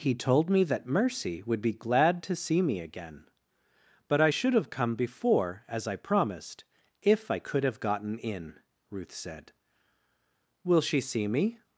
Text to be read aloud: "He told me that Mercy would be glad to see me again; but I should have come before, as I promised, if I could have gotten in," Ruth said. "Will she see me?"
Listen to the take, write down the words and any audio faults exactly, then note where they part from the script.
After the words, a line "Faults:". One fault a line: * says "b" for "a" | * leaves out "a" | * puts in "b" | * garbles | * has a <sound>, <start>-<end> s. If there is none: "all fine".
"He told me that Mercy would be glad to see me again; but I should have come before, as I promised, if I could have gotten in," Ruth said. "Will she see me?"
Faults:
all fine